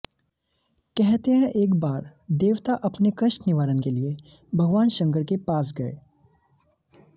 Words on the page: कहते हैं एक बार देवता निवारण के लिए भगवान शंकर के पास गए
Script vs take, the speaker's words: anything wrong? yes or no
yes